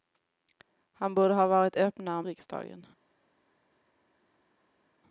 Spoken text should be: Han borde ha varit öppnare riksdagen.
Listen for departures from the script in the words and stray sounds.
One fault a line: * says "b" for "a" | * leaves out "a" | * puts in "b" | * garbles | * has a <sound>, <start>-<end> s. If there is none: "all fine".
all fine